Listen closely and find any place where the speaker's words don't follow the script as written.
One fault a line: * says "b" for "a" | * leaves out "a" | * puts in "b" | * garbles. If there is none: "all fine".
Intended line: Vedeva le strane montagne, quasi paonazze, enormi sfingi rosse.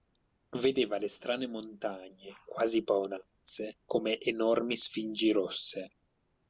* puts in "come"